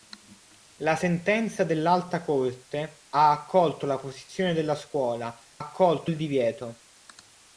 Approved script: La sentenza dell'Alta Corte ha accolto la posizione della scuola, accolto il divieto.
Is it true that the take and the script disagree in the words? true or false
false